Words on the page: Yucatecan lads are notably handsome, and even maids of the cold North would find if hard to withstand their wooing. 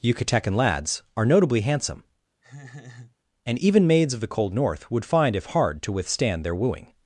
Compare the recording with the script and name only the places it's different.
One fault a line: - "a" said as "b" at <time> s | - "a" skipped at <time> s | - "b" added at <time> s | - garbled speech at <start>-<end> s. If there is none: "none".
none